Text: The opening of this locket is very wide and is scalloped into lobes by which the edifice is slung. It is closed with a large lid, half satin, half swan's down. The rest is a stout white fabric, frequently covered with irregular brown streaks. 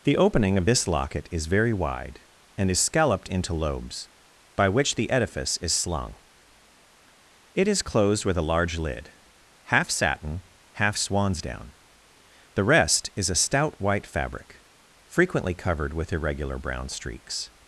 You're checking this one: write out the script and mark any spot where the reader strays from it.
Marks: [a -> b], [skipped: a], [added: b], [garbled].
The opening of this locket is very wide and is scalloped into lobes by which the edifice is slung. It is closed with a large lid, half satin, half swan's down. The rest is a stout white fabric, frequently covered with irregular brown streaks.